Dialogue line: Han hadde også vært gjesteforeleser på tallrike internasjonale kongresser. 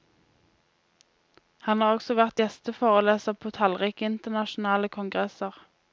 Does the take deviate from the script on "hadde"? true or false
true